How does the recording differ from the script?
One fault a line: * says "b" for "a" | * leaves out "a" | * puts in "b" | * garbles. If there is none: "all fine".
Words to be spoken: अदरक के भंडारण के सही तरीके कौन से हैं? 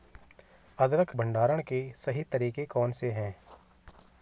* leaves out "के"